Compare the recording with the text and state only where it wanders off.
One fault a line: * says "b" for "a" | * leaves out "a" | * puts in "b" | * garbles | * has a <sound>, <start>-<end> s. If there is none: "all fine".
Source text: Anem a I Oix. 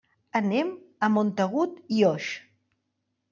* puts in "Montagut"